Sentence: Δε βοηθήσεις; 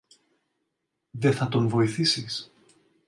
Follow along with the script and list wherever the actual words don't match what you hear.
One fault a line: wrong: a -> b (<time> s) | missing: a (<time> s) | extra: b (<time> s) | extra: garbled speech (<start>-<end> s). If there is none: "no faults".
extra: θα τον (1.3 s)